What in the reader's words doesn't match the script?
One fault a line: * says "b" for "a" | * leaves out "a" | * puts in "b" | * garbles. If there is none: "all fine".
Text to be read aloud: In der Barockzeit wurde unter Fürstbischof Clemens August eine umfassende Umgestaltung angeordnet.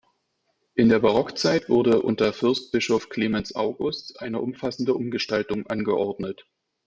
all fine